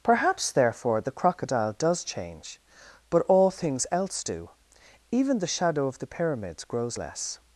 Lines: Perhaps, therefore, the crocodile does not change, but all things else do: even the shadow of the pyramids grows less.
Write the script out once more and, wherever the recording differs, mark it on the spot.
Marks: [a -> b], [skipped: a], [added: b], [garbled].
Perhaps, therefore, the crocodile does [skipped: not] change, but all things else do: even the shadow of the pyramids grows less.